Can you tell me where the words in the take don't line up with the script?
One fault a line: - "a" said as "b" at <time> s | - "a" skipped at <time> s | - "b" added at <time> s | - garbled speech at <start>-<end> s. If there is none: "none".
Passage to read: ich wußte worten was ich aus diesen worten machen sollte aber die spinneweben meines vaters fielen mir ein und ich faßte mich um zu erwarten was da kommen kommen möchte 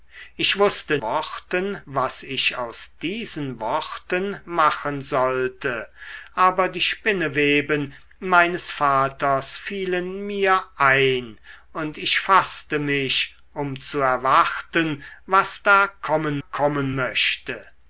none